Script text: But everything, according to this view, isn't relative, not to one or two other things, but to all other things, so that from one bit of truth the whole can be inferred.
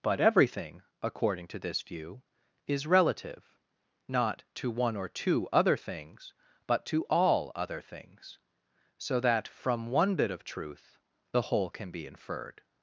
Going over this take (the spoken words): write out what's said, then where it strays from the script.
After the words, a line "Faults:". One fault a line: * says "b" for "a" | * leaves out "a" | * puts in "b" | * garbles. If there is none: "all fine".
But everything, according to this view, is relative, not to one or two other things, but to all other things, so that from one bit of truth the whole can be inferred.
Faults:
* says "is" for "isn't"